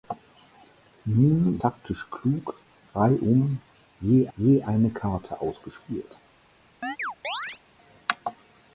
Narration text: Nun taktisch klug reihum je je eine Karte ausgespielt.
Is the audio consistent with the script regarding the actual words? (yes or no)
yes